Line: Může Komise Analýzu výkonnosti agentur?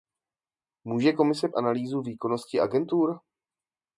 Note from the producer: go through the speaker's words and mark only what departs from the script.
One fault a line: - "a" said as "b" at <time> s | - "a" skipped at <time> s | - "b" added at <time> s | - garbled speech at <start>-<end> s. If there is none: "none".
none